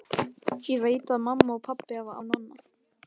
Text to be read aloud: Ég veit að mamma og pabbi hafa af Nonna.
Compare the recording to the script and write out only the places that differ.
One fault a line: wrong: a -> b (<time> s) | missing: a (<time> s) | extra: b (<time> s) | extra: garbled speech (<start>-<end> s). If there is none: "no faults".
no faults